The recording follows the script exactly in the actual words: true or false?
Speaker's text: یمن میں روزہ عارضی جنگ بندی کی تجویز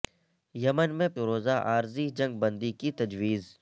true